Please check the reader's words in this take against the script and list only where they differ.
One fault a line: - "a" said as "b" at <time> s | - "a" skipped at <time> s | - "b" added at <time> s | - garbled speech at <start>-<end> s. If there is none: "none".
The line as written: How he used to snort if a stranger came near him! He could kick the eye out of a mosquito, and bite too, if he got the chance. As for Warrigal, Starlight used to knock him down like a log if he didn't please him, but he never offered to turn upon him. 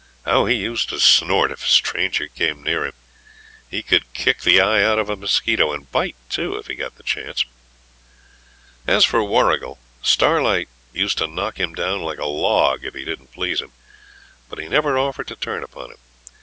none